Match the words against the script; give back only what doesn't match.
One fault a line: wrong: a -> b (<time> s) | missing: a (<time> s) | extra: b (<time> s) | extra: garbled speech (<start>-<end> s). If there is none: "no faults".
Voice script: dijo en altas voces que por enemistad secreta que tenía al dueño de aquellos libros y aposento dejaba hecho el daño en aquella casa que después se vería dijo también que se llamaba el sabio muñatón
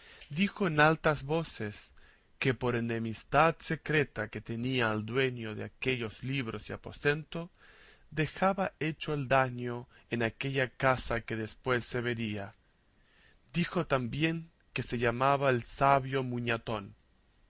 no faults